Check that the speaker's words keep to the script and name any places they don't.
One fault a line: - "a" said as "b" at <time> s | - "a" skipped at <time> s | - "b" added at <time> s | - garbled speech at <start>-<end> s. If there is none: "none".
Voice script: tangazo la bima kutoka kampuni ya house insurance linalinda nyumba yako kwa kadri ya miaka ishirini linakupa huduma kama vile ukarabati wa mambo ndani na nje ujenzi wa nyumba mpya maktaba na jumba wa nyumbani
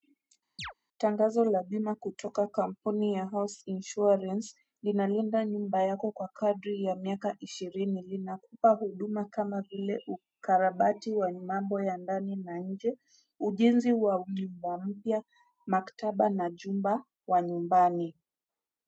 - "ya" added at 11.8 s